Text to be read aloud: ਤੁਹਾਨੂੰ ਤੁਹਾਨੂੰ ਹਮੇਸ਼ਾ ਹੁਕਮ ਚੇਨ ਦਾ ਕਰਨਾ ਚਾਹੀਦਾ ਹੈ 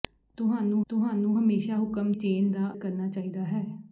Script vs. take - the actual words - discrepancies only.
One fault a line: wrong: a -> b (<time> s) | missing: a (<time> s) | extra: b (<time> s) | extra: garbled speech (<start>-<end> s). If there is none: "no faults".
no faults